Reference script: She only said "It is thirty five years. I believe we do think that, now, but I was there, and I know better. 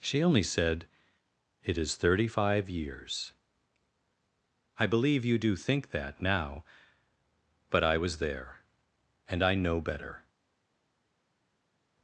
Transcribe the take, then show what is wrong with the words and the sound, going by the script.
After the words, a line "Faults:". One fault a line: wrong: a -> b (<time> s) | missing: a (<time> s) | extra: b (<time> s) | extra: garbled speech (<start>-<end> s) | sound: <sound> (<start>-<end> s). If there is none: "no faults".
She only said "It is thirty five years. I believe you do think that, now, but I was there, and I know better.
Faults:
wrong: we -> you (5.2 s)